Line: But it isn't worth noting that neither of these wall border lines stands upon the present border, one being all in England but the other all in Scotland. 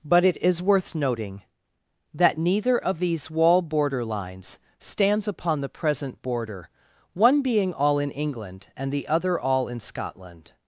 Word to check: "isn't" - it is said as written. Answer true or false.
false